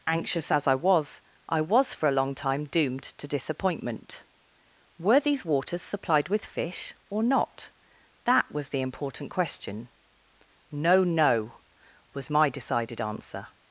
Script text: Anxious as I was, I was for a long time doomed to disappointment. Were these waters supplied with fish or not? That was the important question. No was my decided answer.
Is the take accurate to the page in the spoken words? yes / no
no